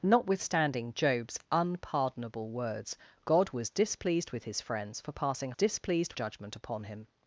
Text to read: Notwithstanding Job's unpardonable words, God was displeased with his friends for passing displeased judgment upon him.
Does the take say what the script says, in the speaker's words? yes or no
yes